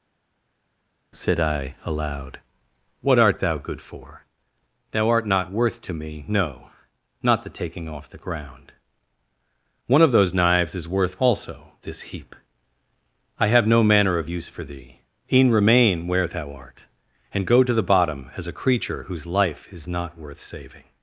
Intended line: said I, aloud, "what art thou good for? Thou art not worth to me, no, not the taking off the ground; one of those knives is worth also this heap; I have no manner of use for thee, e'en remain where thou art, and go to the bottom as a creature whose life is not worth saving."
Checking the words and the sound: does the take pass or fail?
pass